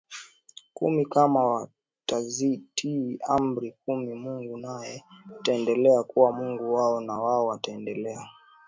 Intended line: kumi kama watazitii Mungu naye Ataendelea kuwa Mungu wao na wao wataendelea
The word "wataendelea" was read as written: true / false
true